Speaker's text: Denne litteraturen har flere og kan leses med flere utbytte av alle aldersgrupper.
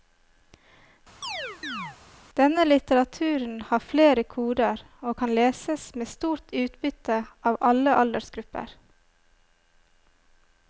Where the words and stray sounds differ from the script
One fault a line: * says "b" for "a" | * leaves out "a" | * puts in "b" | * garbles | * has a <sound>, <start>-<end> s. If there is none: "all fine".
* has a chirp, 1.2-2.0 s
* puts in "koder"
* says "stort" for "flere"